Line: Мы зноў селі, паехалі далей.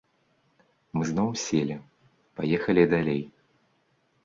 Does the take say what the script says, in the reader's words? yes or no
yes